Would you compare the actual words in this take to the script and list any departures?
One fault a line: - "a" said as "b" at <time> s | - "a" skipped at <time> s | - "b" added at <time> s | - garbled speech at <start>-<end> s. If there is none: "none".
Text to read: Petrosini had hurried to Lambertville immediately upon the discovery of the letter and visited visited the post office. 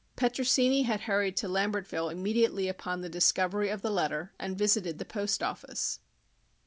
- "visited" skipped at 5.0 s